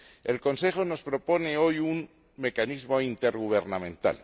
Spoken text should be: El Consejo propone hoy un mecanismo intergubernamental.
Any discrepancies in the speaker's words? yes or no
yes